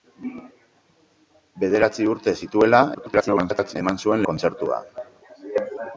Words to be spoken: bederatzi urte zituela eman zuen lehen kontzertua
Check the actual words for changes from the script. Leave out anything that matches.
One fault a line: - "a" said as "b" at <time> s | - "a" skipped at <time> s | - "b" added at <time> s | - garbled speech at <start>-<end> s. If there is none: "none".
- garbled speech at 2.9-3.8 s
- "lehen" skipped at 4.3 s